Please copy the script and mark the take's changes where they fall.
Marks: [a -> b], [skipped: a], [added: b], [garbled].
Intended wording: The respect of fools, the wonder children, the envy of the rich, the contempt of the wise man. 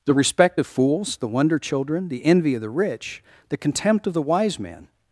The respect of fools, the wonder children, the envy of the rich, the contempt of the wise man.